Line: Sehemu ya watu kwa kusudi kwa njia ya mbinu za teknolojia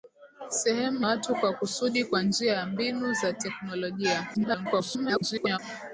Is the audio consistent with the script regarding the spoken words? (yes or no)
no